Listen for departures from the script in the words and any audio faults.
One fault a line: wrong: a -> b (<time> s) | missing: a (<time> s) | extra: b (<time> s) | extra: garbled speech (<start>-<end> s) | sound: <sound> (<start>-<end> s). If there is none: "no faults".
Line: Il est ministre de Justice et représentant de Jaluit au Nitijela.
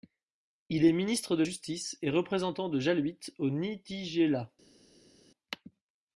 no faults